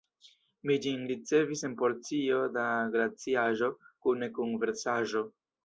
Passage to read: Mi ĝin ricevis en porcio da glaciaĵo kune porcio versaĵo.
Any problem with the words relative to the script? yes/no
yes